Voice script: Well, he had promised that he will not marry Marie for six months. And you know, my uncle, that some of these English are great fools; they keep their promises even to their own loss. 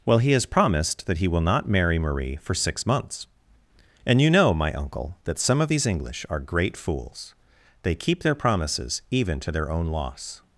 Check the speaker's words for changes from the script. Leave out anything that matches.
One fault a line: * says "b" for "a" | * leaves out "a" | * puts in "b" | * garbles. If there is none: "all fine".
* says "has" for "had"